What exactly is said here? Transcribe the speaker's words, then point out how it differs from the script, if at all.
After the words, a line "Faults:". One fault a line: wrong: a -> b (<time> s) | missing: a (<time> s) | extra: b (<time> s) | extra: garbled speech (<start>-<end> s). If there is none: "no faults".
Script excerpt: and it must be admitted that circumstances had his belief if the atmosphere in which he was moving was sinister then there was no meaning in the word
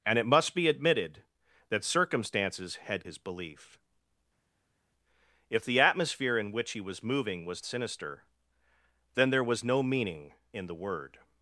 and it must be admitted that circumstances had his belief if the atmosphere in which he was moving was sinister then there was no meaning in the word
Faults:
no faults